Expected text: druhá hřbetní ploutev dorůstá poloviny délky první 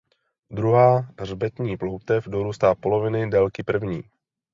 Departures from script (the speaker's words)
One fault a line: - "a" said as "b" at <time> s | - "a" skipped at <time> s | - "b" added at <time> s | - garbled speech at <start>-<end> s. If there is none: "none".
none